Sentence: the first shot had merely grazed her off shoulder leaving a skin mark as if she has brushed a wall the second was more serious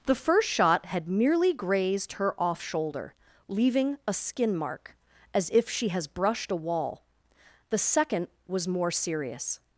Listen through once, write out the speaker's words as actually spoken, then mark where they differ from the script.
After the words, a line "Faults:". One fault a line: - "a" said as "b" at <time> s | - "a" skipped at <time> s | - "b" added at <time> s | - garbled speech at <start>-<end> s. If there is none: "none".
the first shot had merely grazed her off shoulder leaving a skin mark as if she has brushed a wall the second was more serious
Faults:
none